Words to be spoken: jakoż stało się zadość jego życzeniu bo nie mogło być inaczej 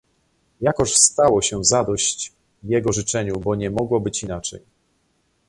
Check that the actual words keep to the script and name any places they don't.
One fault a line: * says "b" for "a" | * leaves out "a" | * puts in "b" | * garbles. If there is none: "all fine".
all fine